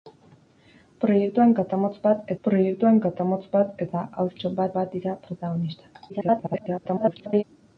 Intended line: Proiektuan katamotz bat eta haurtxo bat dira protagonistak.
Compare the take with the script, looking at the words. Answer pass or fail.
fail